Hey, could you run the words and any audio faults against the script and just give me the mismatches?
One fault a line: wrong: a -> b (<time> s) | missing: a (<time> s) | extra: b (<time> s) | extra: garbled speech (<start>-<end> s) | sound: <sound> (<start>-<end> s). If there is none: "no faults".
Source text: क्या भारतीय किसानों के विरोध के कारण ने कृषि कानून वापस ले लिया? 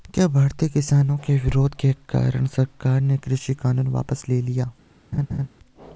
extra: सरकार (2.5 s)
sound: laugh (5.1-5.5 s)